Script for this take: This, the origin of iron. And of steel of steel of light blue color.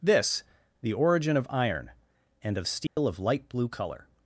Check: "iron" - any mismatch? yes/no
no